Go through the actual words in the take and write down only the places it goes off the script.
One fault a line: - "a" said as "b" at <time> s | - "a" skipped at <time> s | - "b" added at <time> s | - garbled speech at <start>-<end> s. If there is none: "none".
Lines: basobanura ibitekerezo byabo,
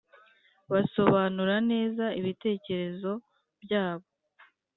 - "neza" added at 1.7 s